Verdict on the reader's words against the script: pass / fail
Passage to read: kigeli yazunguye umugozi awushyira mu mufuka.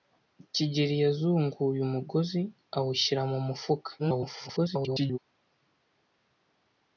fail